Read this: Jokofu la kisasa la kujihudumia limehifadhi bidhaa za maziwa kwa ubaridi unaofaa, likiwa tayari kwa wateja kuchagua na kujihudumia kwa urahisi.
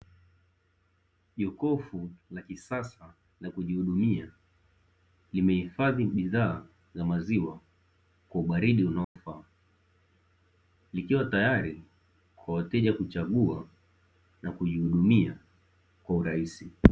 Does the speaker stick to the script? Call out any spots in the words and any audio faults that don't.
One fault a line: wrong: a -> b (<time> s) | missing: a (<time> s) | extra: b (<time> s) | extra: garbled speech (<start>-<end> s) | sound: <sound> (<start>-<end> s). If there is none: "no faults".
sound: dropout (9.0-9.2 s)